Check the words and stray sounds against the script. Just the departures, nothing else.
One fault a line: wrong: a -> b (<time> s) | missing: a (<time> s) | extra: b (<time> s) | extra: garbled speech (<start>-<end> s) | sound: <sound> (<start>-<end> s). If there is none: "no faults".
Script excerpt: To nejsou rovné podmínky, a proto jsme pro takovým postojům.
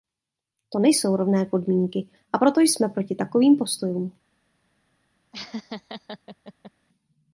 wrong: pro -> proti (2.9 s)
sound: laugh (5.3-6.7 s)